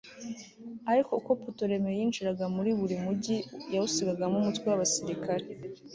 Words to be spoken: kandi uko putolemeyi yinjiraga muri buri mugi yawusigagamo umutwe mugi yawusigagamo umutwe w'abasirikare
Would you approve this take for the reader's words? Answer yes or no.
no